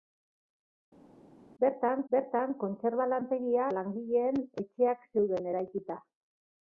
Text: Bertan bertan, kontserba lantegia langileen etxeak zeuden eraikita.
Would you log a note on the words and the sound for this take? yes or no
no